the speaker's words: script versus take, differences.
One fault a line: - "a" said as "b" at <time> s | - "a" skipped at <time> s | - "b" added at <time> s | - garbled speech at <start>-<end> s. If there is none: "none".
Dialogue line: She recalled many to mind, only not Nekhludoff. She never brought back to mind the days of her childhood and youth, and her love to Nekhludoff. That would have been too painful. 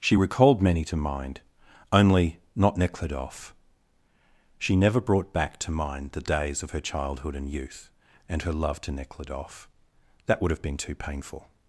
none